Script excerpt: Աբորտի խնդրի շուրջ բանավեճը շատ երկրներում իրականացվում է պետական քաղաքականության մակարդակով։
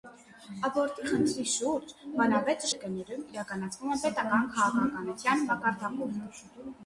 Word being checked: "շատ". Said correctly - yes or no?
no